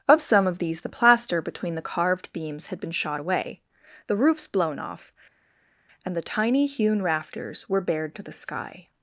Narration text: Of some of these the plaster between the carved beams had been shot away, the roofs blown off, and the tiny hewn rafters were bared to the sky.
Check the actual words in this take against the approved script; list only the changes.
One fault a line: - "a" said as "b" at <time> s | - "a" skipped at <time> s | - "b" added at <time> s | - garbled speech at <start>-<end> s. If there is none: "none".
none